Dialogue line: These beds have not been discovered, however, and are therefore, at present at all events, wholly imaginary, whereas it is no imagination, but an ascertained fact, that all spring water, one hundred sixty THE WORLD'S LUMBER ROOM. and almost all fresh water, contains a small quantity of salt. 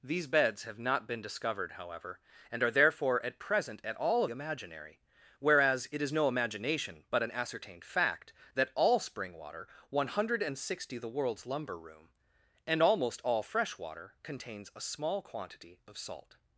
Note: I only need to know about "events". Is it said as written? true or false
false